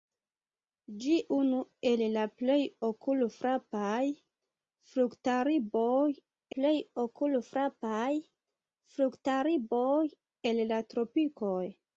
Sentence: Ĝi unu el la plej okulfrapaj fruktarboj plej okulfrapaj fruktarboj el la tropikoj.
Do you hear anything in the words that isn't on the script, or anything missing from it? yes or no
no